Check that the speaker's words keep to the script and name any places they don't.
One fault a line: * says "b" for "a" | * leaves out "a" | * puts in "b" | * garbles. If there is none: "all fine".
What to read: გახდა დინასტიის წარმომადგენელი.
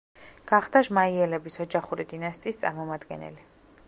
* puts in "ჟმაიელების ოჯახური"